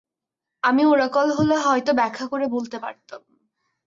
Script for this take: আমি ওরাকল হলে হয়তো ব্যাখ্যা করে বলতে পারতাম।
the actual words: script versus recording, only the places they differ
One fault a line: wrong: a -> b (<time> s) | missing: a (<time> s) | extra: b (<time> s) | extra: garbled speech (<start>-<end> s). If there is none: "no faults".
no faults